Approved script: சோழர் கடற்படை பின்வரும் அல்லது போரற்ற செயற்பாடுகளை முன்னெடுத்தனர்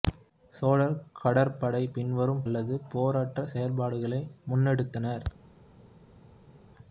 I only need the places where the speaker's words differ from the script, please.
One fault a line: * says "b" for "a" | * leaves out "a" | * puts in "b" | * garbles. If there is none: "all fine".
all fine